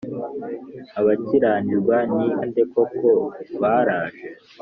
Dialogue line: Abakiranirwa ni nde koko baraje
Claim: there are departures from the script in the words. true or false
false